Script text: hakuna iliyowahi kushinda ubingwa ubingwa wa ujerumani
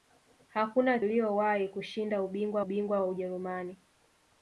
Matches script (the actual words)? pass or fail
pass